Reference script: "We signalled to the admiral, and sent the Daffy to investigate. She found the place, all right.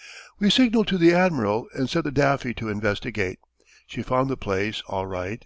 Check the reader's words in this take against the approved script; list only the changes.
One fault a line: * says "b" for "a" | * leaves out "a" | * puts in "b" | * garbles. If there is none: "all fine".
all fine